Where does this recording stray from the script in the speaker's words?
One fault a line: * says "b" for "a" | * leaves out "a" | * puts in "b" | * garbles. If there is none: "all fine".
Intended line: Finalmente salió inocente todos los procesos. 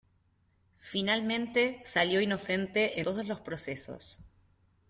all fine